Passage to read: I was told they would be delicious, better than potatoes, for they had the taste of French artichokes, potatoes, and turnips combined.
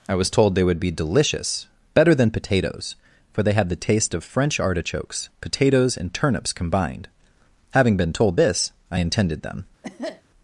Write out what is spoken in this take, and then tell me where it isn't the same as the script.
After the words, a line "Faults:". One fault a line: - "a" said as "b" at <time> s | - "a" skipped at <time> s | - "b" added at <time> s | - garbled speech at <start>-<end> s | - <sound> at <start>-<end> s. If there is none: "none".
I was told they would be delicious, better than potatoes, for they had the taste of French artichokes, potatoes, and turnips combined. Having been told this, I intended them
Faults:
- "Having been told this I intended them" added at 7.7 s
- cough at 9.8-10.2 s